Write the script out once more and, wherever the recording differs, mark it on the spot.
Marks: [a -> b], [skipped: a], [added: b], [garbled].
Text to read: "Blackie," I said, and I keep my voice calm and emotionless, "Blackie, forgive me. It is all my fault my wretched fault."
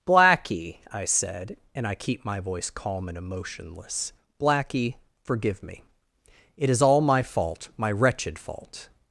"Blackie," I said, and I keep my voice calm and emotionless, "Blackie, forgive me. It is all my fault my wretched fault."